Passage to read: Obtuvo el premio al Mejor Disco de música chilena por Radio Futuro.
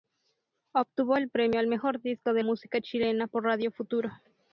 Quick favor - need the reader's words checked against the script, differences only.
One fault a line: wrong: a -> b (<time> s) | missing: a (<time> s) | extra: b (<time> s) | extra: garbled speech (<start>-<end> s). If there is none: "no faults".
no faults